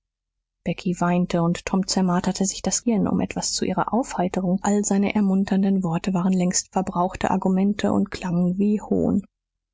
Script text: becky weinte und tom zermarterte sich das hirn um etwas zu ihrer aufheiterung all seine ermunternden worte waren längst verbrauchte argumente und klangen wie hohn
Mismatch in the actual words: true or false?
false